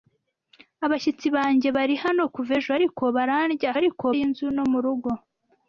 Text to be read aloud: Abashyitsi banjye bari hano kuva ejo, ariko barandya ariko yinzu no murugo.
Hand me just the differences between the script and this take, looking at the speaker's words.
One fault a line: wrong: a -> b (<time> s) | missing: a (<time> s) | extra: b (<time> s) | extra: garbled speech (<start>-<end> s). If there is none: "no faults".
no faults